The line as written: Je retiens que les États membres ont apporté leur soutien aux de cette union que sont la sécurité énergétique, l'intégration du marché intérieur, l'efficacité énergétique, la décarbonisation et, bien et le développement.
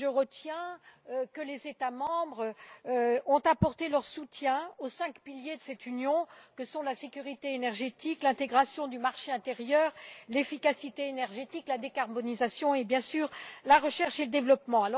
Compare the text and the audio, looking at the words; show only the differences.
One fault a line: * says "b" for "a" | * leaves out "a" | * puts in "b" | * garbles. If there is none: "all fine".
* puts in "cinq piliers"
* puts in "sûr la recherche"